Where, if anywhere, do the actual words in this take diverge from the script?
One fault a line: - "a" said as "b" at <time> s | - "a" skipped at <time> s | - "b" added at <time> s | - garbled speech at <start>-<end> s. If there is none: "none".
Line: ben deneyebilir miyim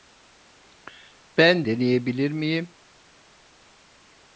none